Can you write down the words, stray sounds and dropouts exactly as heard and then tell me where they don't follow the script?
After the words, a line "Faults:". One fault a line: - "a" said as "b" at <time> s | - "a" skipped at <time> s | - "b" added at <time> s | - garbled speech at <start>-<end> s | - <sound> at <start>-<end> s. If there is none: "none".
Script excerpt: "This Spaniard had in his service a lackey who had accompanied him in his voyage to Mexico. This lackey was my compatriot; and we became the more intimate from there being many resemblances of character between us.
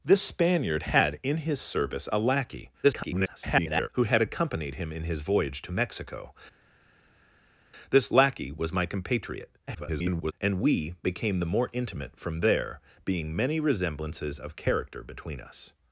"This Spaniard had in his service a lackey [garbled] who had accompanied him in his voyage to Mexico. This lackey was my compatriot; [garbled] and we became the more intimate from there being many resemblances of character between us.
Faults:
- garbled speech at 2.8-3.9 s
- garbled speech at 9.7-10.3 s